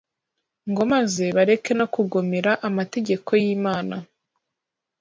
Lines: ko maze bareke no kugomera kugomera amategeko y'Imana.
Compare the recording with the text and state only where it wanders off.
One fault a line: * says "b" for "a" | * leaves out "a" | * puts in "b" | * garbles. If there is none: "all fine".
* says "ngo" for "ko"
* leaves out "kugomera"